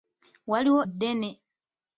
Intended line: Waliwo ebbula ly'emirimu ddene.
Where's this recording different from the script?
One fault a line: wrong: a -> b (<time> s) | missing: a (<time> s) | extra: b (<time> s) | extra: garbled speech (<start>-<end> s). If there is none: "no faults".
missing: ebbula ly'emirimu (0.8 s)